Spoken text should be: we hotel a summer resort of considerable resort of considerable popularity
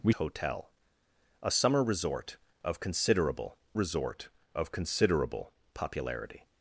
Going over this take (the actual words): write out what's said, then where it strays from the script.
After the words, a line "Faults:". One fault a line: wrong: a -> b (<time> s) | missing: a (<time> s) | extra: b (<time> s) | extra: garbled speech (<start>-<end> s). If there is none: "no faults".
we hotel a summer resort of considerable resort of considerable popularity
Faults:
no faults